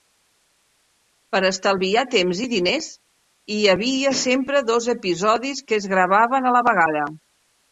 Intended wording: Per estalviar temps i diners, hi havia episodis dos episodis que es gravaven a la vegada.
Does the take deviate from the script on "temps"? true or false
false